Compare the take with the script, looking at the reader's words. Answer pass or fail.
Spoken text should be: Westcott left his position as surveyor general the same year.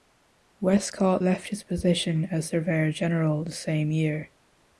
pass